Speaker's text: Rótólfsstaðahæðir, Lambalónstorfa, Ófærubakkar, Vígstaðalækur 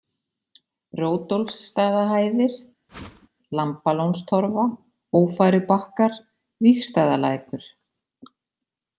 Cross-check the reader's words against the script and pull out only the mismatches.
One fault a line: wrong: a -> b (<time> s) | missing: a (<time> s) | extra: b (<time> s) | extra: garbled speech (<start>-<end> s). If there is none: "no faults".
no faults